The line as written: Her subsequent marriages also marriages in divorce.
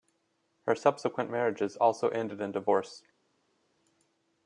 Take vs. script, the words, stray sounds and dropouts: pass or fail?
fail